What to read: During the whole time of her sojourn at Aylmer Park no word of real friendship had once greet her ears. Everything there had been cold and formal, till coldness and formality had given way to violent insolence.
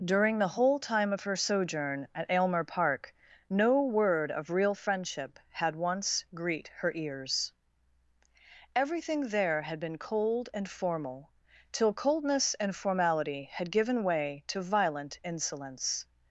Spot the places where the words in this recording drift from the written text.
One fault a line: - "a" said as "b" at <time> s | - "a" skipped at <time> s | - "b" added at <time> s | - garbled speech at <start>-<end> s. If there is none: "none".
none